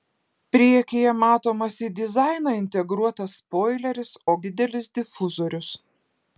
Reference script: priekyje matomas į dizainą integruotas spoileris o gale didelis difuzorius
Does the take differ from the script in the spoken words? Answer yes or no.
yes